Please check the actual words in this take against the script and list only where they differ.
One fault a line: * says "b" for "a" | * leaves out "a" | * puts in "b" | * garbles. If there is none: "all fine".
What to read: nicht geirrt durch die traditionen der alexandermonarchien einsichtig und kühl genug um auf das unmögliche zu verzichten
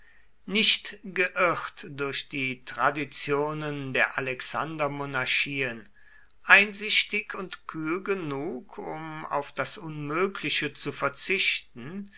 all fine